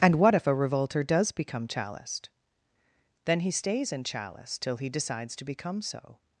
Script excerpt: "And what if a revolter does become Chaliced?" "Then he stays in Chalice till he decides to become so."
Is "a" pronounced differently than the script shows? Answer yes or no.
no